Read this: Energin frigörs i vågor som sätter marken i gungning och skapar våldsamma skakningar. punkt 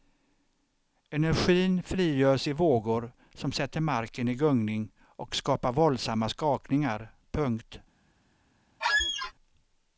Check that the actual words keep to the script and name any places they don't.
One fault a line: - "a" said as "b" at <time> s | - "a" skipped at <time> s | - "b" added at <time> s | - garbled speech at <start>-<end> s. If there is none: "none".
none